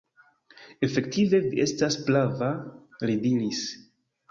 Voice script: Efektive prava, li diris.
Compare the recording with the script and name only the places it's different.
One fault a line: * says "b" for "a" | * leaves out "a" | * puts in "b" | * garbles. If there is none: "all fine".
* puts in "vi estas"